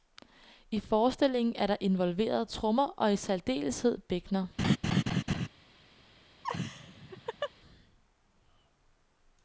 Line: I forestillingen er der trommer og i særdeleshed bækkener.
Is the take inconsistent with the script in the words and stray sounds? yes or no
yes